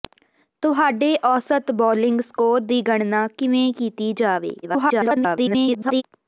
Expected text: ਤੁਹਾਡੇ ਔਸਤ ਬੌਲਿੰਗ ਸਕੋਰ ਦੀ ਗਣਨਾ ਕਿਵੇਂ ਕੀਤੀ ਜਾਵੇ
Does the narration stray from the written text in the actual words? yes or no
yes